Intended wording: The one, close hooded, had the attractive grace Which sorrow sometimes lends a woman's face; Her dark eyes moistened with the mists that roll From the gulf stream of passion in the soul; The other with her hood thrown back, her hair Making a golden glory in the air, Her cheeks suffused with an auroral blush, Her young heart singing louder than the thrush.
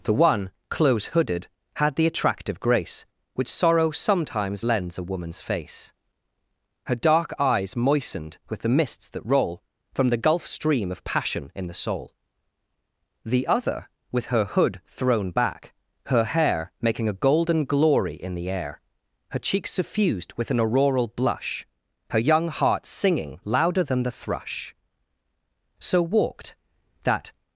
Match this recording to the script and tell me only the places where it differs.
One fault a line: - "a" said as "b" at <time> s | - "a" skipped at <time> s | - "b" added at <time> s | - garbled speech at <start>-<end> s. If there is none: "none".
- "So walked that" added at 25.8 s